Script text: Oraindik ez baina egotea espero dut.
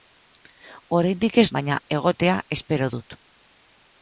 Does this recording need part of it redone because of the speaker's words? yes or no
no